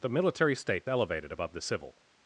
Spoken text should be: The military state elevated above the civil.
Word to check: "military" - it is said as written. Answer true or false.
true